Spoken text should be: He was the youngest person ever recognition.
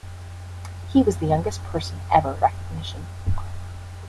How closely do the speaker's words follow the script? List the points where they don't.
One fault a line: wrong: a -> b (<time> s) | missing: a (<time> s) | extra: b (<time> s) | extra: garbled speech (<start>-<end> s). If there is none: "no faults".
no faults